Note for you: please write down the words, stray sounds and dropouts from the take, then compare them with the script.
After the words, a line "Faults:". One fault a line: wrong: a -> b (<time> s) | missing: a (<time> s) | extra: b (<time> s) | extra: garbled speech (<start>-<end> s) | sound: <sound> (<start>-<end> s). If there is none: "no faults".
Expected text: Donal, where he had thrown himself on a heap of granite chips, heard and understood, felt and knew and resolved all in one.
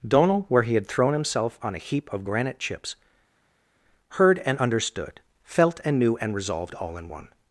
Donal, where he had thrown himself on a heap of granite chips, heard and understood, felt and knew and resolved all in one.
Faults:
no faults